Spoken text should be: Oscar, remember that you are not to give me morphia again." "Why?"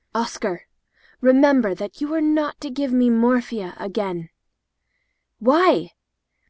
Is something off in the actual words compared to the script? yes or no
no